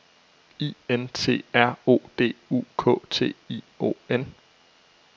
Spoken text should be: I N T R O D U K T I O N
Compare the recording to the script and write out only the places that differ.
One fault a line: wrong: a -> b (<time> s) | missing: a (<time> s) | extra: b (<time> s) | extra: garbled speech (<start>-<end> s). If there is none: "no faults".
no faults